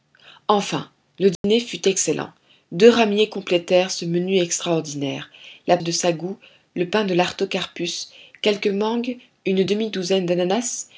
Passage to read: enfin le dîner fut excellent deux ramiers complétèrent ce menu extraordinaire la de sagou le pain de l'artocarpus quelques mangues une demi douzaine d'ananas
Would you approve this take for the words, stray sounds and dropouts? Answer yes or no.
no